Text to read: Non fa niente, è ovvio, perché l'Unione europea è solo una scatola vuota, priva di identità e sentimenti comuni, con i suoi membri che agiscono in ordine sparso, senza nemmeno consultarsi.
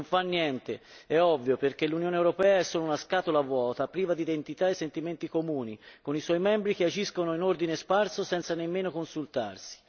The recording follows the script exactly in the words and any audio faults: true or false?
true